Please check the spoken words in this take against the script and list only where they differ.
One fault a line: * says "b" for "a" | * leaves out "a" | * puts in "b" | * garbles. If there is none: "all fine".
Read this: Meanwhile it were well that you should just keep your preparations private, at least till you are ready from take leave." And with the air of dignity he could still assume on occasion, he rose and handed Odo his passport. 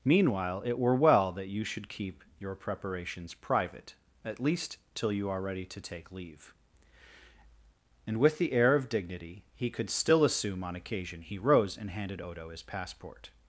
* leaves out "just"
* says "to" for "from"